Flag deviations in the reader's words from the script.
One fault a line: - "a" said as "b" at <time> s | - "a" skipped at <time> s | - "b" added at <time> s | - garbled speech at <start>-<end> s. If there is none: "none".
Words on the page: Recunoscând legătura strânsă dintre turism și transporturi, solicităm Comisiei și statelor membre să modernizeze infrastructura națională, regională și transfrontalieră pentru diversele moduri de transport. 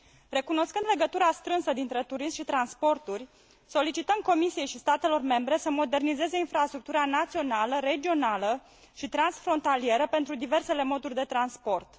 none